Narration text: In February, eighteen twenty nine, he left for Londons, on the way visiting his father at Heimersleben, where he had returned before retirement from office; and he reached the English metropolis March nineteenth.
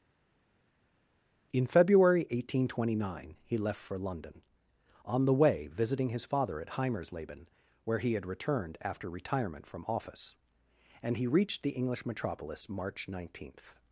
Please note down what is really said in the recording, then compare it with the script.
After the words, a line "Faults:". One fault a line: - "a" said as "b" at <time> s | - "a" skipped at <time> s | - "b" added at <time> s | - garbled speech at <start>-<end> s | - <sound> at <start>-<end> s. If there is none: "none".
In February, eighteen twenty nine, he left for London, on the way visiting his father at Heimersleben, where he had returned after retirement from office; and he reached the English metropolis March nineteenth.
Faults:
- "Londons" said as "London" at 4.0 s
- "before" said as "after" at 8.8 s